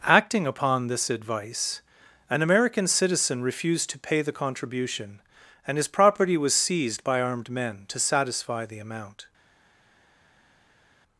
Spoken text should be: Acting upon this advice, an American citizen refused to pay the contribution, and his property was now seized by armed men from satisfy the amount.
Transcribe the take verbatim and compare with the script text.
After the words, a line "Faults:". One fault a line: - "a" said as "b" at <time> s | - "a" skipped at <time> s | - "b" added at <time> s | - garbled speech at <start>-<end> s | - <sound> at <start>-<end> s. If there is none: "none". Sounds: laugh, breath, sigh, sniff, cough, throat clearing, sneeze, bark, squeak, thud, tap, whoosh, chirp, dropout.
Acting upon this advice, an American citizen refused to pay the contribution, and his property was seized by armed men to satisfy the amount.
Faults:
- "now" skipped at 6.5 s
- "from" said as "to" at 7.9 s